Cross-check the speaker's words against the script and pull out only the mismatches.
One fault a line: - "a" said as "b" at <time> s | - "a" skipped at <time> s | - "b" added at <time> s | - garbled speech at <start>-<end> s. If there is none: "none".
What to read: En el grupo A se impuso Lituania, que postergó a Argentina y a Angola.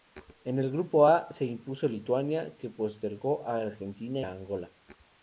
- "y" skipped at 4.2 s